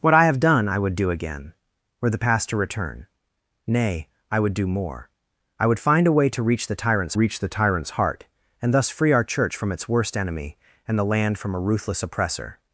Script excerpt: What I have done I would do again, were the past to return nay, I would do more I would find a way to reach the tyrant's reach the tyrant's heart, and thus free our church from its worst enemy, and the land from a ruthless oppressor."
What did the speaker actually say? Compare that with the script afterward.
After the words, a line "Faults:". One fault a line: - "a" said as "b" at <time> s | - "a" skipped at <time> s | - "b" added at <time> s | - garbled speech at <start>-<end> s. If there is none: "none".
What I have done I would do again, were the past to return nay, I would do more I would find a way to reach the tyrant's reach the tyrant's heart, and thus free our church from its worst enemy, and the land from a ruthless oppressor."
Faults:
none